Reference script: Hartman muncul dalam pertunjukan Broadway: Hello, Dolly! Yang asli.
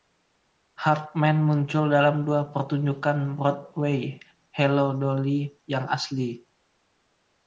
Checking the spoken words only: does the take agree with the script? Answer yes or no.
no